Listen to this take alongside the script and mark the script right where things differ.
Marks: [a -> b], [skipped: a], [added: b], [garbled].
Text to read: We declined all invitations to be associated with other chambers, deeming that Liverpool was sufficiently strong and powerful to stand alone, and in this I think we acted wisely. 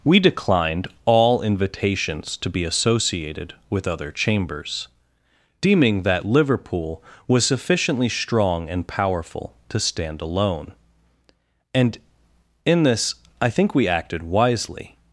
We declined all invitations to be associated with other chambers, deeming that Liverpool was sufficiently strong and powerful to stand alone, and in this I think we acted wisely.